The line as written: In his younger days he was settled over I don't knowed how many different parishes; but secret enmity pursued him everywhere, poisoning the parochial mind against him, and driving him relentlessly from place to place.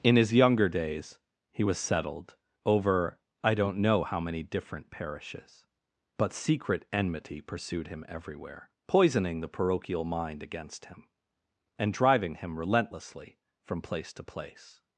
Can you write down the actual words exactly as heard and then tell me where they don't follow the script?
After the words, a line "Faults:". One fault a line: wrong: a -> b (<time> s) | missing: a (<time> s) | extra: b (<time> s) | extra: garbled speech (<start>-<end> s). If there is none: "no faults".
In his younger days he was settled over I don't know how many different parishes; but secret enmity pursued him everywhere, poisoning the parochial mind against him, and driving him relentlessly from place to place.
Faults:
wrong: knowed -> know (3.8 s)